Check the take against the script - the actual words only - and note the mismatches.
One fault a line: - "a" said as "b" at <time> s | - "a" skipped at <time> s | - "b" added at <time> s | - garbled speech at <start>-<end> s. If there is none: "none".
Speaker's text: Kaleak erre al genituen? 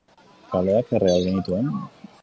none